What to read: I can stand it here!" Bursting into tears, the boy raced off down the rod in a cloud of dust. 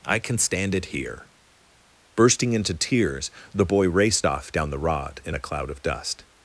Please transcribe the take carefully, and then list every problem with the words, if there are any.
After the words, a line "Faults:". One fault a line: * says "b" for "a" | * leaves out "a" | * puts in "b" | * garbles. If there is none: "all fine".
I can stand it here!" Bursting into tears, the boy raced off down the rod in a cloud of dust.
Faults:
all fine